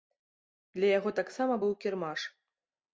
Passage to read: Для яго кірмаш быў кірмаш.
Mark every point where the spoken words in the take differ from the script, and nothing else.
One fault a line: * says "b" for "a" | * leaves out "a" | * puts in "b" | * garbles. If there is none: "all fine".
* says "таксама" for "кірмаш"